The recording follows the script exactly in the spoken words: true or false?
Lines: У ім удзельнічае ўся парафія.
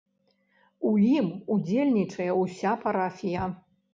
true